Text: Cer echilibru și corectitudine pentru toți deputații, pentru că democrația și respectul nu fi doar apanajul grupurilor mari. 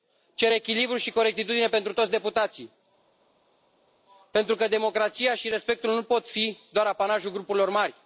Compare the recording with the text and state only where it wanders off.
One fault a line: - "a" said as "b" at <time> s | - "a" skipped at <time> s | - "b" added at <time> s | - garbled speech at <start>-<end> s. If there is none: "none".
- "pot" added at 6.0 s